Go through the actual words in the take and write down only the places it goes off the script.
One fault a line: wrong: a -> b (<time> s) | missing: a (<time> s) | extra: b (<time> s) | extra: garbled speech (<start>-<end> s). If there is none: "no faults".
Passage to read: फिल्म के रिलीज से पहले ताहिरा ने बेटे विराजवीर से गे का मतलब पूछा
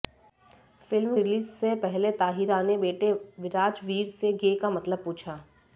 missing: के (1.2 s)